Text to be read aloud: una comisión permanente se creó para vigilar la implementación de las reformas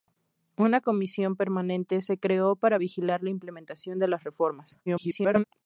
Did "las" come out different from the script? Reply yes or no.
no